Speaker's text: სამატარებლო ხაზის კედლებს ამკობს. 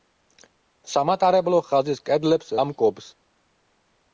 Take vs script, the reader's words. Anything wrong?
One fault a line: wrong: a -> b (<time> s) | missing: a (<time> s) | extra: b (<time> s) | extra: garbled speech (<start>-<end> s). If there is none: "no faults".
no faults